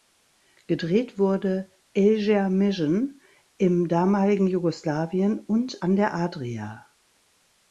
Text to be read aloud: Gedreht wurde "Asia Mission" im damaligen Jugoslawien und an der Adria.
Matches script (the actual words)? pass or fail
pass